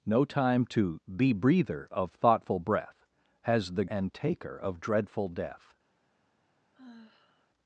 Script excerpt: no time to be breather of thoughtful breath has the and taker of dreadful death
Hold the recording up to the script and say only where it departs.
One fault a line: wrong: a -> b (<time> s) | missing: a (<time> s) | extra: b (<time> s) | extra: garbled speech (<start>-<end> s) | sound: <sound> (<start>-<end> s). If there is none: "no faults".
sound: sigh (6.7-7.5 s)